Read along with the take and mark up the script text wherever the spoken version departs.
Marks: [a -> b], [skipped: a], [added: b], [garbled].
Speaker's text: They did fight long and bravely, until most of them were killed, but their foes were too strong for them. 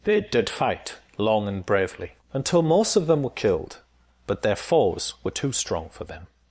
They did fight long and bravely, until most of them were killed, but their foes were too strong for them.